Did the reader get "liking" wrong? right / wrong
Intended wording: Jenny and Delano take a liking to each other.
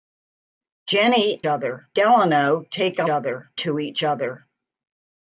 wrong